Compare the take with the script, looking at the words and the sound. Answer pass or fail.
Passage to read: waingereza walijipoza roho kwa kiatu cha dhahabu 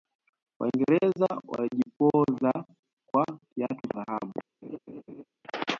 fail